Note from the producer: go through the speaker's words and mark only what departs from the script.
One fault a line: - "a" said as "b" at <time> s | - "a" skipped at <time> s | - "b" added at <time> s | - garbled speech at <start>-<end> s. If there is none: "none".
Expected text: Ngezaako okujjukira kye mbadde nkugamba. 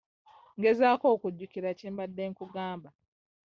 none